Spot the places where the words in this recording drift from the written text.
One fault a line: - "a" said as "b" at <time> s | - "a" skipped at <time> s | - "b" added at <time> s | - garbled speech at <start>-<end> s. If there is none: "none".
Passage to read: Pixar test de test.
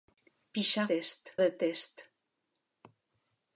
none